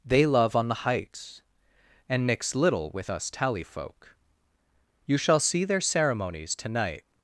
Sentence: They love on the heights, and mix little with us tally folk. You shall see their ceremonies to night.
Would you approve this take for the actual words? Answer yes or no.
yes